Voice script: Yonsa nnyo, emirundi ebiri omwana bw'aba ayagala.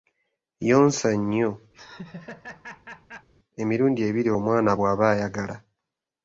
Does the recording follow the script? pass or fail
pass